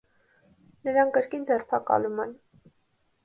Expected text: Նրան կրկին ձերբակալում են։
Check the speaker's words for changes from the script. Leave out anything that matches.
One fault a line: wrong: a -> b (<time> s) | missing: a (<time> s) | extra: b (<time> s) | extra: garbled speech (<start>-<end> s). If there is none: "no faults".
no faults